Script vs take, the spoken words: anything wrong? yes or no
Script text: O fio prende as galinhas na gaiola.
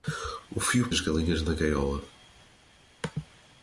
yes